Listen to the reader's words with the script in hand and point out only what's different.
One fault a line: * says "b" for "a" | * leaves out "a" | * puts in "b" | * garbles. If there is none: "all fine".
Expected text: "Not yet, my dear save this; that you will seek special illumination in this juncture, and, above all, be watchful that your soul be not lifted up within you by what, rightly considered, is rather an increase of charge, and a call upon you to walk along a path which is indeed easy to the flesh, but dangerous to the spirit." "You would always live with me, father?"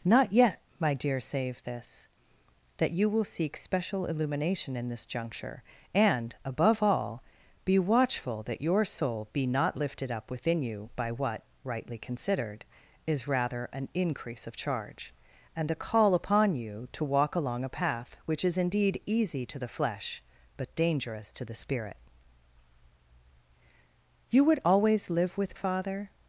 * leaves out "me"